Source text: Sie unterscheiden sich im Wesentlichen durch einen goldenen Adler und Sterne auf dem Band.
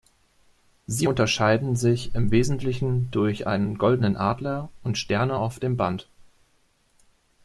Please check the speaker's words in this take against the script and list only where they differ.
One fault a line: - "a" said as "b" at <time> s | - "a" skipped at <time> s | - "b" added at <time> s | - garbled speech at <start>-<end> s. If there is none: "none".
none